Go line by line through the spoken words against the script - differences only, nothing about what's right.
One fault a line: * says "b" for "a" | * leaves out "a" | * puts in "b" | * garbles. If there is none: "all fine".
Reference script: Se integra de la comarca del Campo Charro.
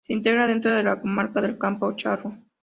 * puts in "dentro"